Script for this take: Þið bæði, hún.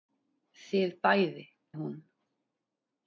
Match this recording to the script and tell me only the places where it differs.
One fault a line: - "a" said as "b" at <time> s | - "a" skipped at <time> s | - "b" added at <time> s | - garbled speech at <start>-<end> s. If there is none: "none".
none